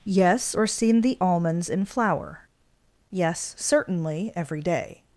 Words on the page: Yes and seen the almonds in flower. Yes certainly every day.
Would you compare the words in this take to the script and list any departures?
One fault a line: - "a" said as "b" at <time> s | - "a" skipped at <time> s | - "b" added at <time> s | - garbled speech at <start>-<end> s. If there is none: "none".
- "and" said as "or" at 0.5 s